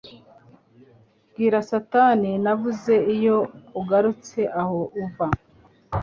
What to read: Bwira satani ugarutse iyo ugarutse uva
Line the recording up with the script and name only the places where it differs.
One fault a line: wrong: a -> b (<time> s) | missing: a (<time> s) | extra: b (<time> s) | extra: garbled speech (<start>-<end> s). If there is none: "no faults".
wrong: ugarutse -> navuze (2.4 s)
extra: aho (4.6 s)